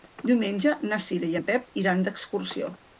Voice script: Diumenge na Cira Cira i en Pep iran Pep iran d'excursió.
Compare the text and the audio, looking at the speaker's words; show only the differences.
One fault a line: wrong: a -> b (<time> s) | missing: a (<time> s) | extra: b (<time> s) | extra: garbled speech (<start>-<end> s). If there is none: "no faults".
missing: Cira (1.3 s)
missing: Pep iran (2.0 s)